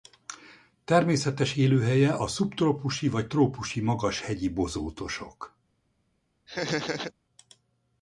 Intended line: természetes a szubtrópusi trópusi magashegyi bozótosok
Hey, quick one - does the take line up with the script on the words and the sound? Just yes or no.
no